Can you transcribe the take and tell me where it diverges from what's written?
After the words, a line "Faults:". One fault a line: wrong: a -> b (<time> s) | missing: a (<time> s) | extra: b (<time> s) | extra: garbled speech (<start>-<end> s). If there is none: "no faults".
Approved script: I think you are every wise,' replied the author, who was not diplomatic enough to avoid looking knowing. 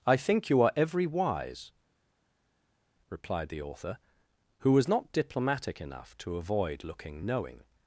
I think you are every wise,' replied the author, who was not diplomatic enough to avoid looking knowing.
Faults:
no faults